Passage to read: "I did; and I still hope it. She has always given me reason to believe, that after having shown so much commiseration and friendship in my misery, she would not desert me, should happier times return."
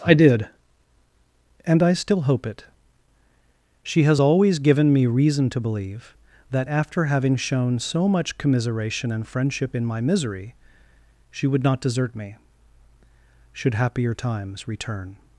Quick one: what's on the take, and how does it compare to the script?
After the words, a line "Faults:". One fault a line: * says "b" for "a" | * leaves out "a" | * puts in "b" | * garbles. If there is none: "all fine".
"I did; and I still hope it. She has always given me reason to believe, that after having shown so much commiseration and friendship in my misery, she would not desert me, should happier times return."
Faults:
all fine